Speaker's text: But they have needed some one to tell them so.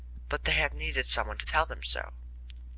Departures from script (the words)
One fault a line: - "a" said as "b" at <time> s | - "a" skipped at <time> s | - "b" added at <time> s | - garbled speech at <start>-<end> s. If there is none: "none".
none